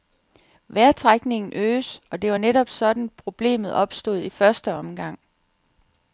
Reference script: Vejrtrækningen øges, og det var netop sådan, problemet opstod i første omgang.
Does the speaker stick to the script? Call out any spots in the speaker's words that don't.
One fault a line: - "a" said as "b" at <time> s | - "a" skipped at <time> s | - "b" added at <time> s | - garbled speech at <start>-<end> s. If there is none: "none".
none